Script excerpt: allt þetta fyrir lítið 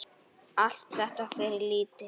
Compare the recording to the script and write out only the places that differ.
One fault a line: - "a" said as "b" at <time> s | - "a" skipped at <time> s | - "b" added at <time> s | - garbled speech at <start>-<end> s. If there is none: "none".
none